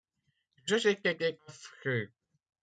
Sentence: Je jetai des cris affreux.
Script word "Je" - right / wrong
right